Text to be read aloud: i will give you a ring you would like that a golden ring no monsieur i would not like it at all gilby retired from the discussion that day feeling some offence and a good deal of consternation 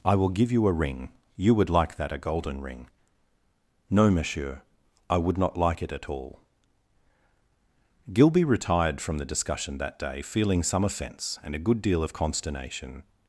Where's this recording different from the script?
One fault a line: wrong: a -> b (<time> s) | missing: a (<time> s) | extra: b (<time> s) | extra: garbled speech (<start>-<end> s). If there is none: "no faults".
no faults